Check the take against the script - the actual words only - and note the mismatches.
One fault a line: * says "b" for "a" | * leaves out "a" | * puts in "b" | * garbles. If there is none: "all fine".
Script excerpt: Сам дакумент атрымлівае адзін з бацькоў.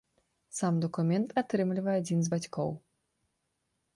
all fine